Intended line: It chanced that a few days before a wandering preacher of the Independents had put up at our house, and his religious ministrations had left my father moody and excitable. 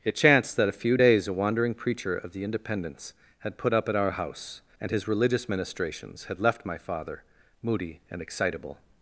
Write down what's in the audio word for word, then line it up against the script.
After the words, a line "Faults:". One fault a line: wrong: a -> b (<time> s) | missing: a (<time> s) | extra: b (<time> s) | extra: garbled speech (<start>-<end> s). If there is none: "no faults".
It chanced that a few days a wandering preacher of the Independents had put up at our house, and his religious ministrations had left my father moody and excitable.
Faults:
missing: before (1.3 s)